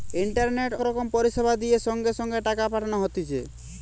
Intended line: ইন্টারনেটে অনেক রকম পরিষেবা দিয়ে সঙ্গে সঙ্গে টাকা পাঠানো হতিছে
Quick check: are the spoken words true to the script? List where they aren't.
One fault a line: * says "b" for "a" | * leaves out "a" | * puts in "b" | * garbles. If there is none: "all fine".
* leaves out "অনেক"